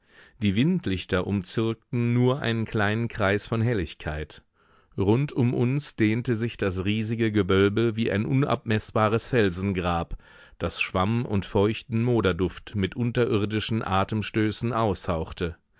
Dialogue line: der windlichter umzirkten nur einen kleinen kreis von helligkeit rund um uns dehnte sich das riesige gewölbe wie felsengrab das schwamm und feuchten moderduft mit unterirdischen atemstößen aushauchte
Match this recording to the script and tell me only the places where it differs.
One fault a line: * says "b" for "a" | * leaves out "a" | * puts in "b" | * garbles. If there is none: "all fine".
* says "die" for "der"
* puts in "ein unabmeßbares"